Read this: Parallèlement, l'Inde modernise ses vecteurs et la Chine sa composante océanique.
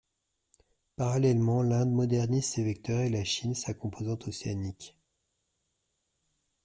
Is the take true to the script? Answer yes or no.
yes